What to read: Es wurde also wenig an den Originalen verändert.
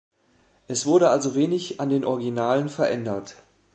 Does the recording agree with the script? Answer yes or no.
yes